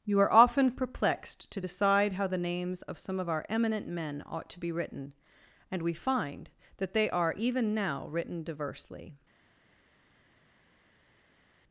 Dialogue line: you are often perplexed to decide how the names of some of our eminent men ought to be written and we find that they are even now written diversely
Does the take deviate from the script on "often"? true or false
false